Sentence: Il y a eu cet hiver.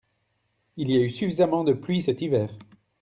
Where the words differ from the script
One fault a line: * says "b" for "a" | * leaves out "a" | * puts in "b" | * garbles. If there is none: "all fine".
* puts in "suffisamment de pluie"